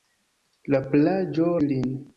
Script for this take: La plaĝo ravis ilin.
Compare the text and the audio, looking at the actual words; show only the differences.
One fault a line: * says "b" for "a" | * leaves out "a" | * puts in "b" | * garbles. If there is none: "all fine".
* leaves out "ravis"